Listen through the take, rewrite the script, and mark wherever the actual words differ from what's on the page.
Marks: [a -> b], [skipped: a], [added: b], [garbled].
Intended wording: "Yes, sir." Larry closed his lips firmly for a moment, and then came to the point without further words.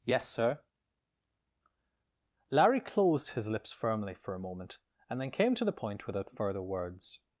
"Yes, sir." Larry closed his lips firmly for a moment, and then came to the point without further words.